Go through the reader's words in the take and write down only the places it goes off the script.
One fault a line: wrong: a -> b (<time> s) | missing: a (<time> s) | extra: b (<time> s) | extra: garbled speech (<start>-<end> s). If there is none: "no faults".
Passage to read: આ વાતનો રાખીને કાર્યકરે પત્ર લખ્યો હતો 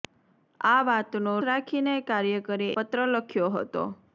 no faults